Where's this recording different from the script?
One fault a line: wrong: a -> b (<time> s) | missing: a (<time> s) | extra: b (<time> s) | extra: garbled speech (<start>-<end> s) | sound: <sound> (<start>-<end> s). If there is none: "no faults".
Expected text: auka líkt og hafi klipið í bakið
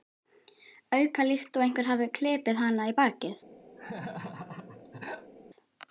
extra: einhver (1.6 s)
extra: hana (2.6 s)
sound: laugh (3.8-5.3 s)